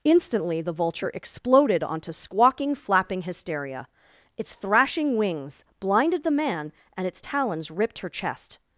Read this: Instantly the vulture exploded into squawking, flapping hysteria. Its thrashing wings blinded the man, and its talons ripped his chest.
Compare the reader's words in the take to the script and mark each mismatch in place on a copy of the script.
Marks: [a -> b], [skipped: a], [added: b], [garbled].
Instantly the vulture exploded [into -> onto] squawking, flapping hysteria. Its thrashing wings blinded the man, and its talons ripped [his -> her] chest.